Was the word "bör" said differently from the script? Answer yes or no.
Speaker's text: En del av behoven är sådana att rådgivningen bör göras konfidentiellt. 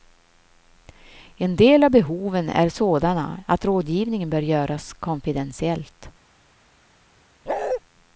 no